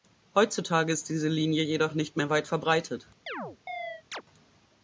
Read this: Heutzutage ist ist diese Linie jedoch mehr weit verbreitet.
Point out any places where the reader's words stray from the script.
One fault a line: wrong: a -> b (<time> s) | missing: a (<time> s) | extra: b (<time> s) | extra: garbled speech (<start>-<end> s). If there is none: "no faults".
missing: ist (1.1 s)
extra: nicht (1.9 s)